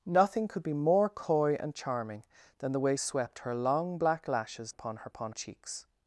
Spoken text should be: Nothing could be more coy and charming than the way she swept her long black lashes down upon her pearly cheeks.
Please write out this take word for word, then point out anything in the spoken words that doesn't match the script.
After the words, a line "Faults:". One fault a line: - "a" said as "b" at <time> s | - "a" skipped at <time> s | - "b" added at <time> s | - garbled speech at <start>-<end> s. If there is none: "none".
Nothing could be more coy and charming than the way swept her long black lashes upon her upon cheeks.
Faults:
- "she" skipped at 3.0 s
- "down" skipped at 4.7 s
- "pearly" said as "upon" at 5.0 s